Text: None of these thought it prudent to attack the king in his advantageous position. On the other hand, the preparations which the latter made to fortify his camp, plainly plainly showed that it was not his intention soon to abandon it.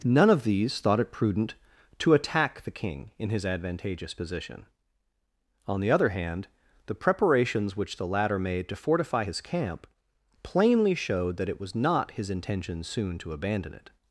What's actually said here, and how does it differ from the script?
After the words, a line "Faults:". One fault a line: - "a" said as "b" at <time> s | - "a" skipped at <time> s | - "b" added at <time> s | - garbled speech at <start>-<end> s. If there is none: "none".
None of these thought it prudent to attack the king in his advantageous position. On the other hand, the preparations which the latter made to fortify his camp, plainly showed that it was not his intention soon to abandon it.
Faults:
- "plainly" skipped at 10.9 s